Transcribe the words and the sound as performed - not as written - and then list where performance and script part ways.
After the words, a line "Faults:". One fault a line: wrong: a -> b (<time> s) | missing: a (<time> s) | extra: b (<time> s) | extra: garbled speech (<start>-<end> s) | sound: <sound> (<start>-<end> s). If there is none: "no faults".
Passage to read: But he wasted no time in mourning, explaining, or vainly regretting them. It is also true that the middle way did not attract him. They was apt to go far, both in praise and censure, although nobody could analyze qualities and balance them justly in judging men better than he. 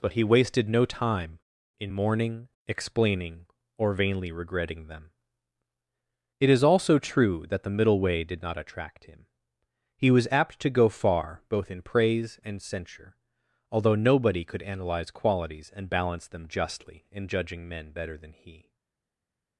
But he wasted no time in mourning, explaining, or vainly regretting them. It is also true that the middle way did not attract him. He was apt to go far, both in praise and censure, although nobody could analyze qualities and balance them justly in judging men better than he.
Faults:
wrong: They -> He (10.0 s)